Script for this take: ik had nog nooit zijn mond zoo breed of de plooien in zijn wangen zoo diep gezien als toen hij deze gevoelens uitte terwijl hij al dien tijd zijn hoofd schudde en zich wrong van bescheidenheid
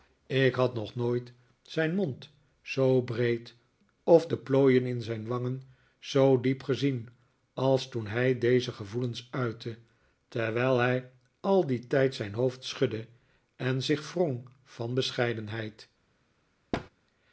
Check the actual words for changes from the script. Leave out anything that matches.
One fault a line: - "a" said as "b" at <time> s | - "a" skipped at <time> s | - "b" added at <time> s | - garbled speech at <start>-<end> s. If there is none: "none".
none